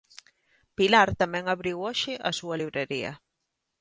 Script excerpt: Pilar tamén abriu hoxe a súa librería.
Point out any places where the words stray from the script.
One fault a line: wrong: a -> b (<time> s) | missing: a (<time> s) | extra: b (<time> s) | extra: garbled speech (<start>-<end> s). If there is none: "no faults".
no faults